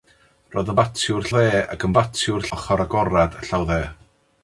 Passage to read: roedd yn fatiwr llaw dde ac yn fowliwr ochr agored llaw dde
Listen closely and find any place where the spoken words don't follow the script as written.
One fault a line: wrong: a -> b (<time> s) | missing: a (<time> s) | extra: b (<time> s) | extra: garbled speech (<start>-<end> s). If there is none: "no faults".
missing: llaw (1.3 s)
wrong: fowliwr -> fatiwr (2.0 s)